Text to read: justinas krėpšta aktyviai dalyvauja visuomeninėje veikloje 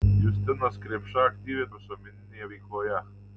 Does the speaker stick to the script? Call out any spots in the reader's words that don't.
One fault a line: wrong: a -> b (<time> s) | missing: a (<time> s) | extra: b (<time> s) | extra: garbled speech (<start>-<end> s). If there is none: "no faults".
missing: dalyvauja (1.7 s)